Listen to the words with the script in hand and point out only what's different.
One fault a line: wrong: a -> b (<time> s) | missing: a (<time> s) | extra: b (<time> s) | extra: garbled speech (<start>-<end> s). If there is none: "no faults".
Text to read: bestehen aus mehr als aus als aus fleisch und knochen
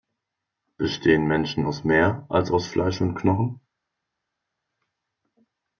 extra: menschen (1.3 s)
missing: als aus (2.7 s)